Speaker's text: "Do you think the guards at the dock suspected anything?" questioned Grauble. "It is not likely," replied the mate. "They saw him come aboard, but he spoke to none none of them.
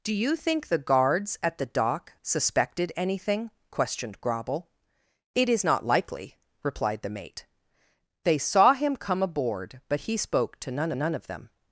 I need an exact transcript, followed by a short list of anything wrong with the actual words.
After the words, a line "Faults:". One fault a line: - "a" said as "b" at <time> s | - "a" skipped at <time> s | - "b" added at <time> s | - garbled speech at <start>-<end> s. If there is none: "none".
"Do you think the guards at the dock suspected anything?" questioned Grauble. "It is not likely," replied the mate. "They saw him come aboard, but he spoke to none none of them.
Faults:
none